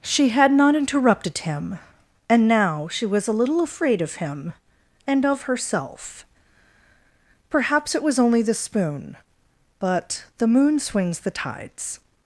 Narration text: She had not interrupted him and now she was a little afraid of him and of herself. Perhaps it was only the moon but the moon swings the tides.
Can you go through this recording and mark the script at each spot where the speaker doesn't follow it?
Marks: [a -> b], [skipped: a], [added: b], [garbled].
She had not interrupted him and now she was a little afraid of him and of herself. Perhaps it was only the [moon -> spoon] but the moon swings the tides.